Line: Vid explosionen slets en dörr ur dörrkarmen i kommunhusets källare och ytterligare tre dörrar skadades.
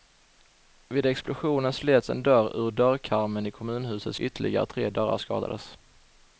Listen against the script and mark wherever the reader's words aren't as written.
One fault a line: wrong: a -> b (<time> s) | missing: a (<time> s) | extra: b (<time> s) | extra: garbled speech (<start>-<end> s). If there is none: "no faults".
missing: källare och (4.2 s)